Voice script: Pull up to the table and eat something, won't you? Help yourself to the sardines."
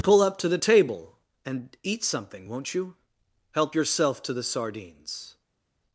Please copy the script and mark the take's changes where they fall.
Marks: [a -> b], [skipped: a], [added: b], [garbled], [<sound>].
Pull up to the table and eat something, won't you? Help yourself to the sardines."